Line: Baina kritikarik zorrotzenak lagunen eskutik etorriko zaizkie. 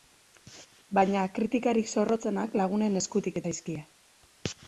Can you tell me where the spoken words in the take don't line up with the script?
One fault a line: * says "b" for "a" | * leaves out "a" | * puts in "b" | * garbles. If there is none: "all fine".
* leaves out "etorriko"